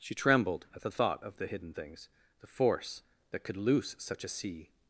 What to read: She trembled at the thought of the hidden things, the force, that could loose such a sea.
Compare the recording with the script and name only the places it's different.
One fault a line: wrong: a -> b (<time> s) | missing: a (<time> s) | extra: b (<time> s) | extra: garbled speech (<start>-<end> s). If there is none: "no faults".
no faults